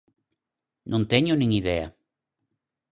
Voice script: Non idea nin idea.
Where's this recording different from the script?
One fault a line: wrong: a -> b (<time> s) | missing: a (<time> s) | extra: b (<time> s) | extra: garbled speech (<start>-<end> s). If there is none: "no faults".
wrong: idea -> teño (1.1 s)